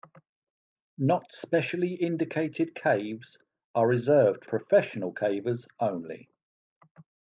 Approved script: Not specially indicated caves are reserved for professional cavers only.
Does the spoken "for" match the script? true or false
false